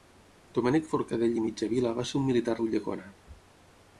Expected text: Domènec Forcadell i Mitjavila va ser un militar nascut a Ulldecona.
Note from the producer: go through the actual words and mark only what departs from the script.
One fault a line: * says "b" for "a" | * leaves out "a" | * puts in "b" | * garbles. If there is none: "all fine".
* leaves out "nascut"